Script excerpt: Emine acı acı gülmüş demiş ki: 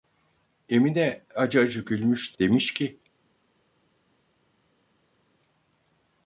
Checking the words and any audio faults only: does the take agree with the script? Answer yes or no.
yes